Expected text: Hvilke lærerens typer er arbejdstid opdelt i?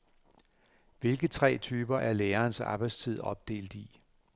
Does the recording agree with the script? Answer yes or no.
no